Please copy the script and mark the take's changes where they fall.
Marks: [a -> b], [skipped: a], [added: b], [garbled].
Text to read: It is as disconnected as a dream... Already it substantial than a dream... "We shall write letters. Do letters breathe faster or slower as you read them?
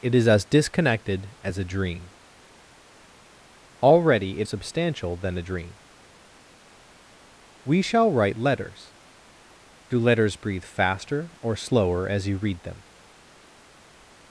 It is as disconnected as a dream... Already it substantial than a dream... "We shall write letters. Do letters breathe faster or slower as you read them?